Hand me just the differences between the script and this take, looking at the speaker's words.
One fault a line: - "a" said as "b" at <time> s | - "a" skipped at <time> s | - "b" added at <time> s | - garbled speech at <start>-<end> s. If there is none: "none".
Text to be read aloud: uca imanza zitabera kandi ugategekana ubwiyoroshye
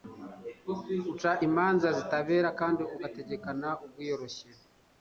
none